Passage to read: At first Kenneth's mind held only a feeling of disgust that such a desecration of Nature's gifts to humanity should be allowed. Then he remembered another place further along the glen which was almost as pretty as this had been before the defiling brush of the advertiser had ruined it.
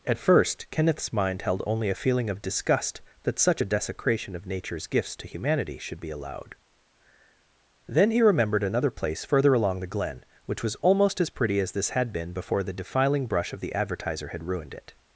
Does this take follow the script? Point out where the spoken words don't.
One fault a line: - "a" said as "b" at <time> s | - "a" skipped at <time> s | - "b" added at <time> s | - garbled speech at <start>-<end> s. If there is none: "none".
none